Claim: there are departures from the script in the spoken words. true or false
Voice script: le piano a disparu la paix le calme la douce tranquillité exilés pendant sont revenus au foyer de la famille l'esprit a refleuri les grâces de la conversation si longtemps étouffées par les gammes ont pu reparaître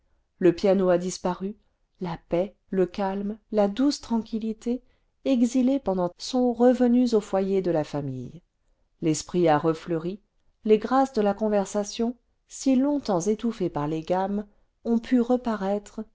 false